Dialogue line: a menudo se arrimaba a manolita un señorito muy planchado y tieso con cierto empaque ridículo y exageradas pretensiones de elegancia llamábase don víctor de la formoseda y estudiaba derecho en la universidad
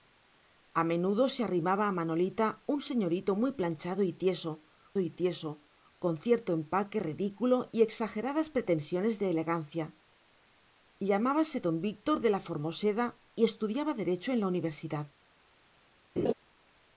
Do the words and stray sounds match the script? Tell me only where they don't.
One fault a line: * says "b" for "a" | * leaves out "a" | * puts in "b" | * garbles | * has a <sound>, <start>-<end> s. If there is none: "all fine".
* puts in "y tieso"
* has a laugh, 16.2-16.3 s